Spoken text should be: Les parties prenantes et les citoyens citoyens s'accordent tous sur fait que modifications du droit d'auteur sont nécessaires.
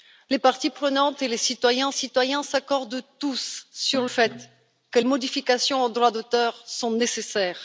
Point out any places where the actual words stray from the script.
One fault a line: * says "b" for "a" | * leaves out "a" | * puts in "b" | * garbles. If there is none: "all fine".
all fine